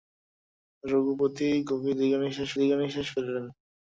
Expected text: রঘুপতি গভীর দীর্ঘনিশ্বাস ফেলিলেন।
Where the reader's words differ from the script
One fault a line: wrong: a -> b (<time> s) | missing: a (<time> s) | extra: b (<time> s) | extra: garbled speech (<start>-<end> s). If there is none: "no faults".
extra: দীর্ঘনিশ্বাস (2.6 s)